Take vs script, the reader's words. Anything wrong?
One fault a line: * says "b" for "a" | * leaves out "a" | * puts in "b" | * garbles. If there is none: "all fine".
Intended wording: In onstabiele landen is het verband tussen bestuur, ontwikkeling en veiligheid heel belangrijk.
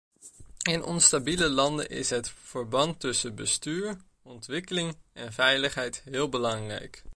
all fine